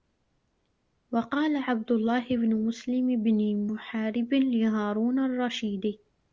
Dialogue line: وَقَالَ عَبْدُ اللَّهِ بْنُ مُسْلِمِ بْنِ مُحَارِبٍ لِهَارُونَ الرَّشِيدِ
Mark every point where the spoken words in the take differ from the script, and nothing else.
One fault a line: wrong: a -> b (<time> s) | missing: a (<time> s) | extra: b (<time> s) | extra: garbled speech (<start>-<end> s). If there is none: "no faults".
no faults